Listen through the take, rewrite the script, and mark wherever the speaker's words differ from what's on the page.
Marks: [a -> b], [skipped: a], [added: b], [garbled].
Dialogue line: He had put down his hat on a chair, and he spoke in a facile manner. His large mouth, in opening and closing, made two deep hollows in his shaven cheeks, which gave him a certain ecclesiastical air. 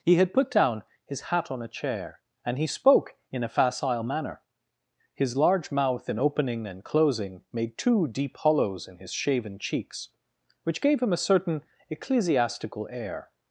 He had put down his hat on a chair, and he spoke in a facile manner. His large mouth, in opening and closing, made two deep hollows in his shaven cheeks, which gave him a certain ecclesiastical air.